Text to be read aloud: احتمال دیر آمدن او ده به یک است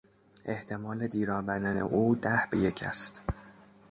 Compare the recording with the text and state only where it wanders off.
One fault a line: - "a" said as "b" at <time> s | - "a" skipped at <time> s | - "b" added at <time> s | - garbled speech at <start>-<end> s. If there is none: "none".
none